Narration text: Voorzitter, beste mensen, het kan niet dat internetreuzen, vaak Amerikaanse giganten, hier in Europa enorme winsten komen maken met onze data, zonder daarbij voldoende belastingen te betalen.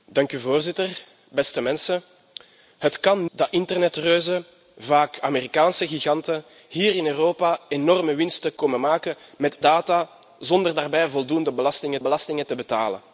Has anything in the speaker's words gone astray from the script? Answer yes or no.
yes